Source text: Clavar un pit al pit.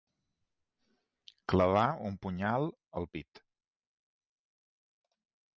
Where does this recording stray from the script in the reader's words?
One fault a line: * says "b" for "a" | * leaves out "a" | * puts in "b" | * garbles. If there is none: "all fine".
* says "punyal" for "pit"